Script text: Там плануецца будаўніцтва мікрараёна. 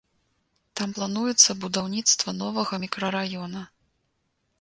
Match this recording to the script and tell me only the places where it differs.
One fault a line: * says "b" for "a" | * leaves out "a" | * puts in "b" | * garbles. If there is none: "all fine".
* puts in "новага"